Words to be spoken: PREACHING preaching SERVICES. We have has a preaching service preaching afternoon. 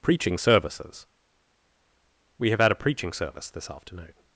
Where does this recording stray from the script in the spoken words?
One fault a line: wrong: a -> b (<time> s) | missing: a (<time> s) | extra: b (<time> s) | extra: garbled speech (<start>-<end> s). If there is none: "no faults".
missing: preaching (0.4 s)
wrong: has -> had (2.6 s)
wrong: preaching -> this (3.5 s)